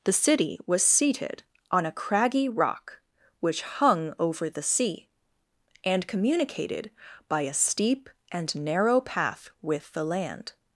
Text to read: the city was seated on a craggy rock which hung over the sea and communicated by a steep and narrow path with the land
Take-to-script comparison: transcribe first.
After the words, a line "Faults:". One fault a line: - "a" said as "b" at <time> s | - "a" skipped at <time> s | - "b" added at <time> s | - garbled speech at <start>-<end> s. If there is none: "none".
the city was seated on a craggy rock which hung over the sea and communicated by a steep and narrow path with the land
Faults:
none